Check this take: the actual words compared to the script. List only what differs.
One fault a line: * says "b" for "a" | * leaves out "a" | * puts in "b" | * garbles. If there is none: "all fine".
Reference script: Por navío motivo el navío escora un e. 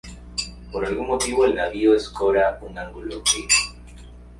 * says "algún" for "navío"
* puts in "ángulo"